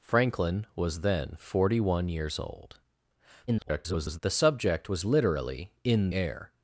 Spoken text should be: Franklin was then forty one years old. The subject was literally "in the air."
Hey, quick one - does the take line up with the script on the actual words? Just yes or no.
no